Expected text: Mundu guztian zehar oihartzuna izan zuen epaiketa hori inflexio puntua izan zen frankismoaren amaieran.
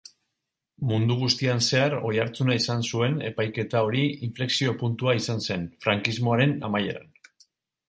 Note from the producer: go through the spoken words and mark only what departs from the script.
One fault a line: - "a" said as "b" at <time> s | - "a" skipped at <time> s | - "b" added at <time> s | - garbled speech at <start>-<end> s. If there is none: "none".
none